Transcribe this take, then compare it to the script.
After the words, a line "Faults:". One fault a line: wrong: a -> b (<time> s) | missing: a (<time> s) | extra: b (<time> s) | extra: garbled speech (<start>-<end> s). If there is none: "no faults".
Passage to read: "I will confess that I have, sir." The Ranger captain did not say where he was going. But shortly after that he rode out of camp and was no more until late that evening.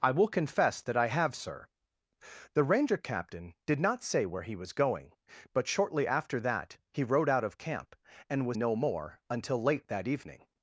"I will confess that I have, sir." The Ranger captain did not say where he was going. But shortly after that he rode out of camp and was no more until late that evening.
Faults:
no faults